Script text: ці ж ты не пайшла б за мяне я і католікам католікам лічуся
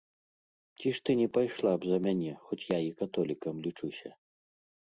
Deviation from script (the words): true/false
true